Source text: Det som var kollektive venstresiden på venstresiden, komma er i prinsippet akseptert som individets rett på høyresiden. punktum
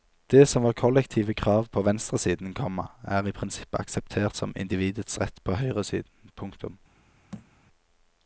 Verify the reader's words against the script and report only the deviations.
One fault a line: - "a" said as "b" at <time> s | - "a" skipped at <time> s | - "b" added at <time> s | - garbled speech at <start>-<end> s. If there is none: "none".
- "venstresiden" said as "krav" at 1.3 s